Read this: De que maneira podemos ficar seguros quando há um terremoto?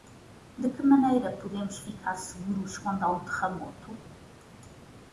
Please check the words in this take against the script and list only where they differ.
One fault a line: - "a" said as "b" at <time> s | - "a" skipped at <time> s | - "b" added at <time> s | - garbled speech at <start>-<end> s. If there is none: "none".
none